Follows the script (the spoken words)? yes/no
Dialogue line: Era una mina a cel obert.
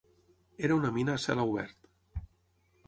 yes